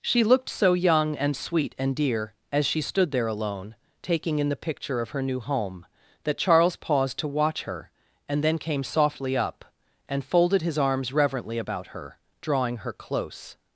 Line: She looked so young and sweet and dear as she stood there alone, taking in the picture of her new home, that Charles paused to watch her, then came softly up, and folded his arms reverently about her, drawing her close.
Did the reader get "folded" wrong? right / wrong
right